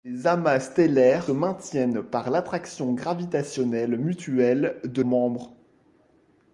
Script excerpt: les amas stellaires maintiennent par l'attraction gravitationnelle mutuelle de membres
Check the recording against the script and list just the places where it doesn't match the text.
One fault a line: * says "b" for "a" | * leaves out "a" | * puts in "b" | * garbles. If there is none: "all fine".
all fine